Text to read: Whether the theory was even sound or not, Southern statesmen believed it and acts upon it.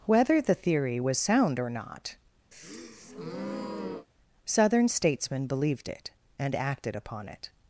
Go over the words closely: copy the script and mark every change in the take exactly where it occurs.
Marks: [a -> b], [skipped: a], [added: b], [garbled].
Whether the theory was [skipped: even] sound or not, Southern statesmen believed it and [acts -> acted] upon it.